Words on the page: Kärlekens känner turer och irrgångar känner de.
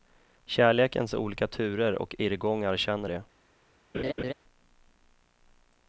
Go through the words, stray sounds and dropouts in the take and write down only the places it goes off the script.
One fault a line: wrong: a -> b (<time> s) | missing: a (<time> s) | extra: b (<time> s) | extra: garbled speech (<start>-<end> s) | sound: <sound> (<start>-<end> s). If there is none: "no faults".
wrong: känner -> olika (1.1 s)
sound: laugh (3.9-4.3 s)